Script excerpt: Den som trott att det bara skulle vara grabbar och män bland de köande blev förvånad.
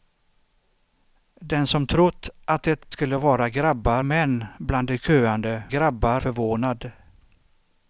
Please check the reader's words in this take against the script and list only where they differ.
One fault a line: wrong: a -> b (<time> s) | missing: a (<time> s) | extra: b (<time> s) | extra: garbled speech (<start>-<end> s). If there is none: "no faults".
missing: bara (2.9 s)
missing: och (4.0 s)
wrong: blev -> grabbar (5.7 s)